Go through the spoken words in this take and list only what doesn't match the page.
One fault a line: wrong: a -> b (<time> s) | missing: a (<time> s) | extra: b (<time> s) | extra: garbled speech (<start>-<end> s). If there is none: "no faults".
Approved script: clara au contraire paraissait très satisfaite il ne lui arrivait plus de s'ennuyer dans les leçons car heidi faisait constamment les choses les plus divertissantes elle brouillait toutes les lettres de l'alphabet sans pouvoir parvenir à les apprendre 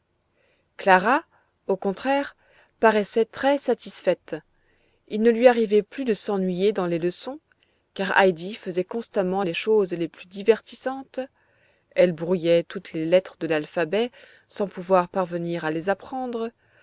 no faults